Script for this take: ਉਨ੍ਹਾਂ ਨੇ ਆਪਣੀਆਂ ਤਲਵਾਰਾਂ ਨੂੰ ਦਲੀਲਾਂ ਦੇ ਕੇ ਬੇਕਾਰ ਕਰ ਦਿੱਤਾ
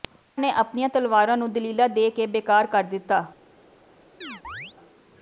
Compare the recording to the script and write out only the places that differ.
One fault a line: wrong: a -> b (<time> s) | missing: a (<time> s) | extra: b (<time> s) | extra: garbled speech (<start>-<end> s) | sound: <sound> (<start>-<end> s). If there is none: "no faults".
sound: chirp (4.2-4.8 s)